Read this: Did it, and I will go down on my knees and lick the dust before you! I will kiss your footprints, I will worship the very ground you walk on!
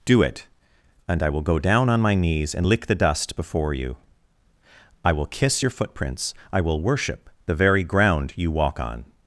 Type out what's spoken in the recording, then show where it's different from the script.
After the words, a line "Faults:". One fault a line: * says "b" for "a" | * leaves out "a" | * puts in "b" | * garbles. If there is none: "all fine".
Do it, and I will go down on my knees and lick the dust before you! I will kiss your footprints, I will worship the very ground you walk on!
Faults:
* says "Do" for "Did"